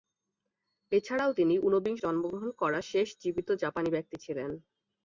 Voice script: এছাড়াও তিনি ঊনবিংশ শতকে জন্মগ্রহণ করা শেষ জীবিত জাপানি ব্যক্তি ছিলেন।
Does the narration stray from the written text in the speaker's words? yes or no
yes